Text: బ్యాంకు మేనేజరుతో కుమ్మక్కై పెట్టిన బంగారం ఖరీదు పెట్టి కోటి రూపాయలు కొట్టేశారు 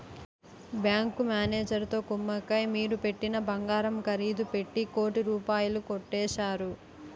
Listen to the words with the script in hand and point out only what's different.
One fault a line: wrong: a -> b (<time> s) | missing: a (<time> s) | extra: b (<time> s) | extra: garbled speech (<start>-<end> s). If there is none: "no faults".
extra: మీరు (2.7 s)